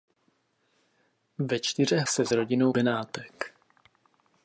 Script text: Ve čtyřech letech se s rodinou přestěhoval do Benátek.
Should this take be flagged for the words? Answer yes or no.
yes